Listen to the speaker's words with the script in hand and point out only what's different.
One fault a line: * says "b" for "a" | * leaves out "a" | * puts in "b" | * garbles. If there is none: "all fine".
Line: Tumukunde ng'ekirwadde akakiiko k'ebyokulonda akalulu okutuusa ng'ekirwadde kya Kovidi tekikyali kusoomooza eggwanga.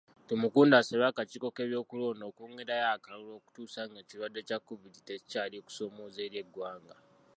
* says "asabye" for "ng'ekirwadde"
* puts in "okwongerayo"
* puts in "eri"